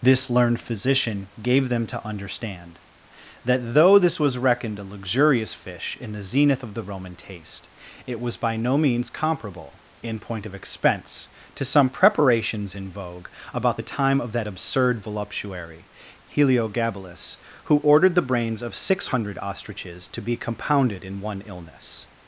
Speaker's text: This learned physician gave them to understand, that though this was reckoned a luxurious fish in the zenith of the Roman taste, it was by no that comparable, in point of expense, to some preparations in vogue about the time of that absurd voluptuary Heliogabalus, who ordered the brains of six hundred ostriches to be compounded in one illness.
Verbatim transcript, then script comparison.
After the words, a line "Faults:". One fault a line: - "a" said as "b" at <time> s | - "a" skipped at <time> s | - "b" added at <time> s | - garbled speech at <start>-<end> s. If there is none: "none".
This learned physician gave them to understand, that though this was reckoned a luxurious fish in the zenith of the Roman taste, it was by no means comparable, in point of expense, to some preparations in vogue about the time of that absurd voluptuary Heliogabalus, who ordered the brains of six hundred ostriches to be compounded in one illness.
Faults:
- "that" said as "means" at 8.8 s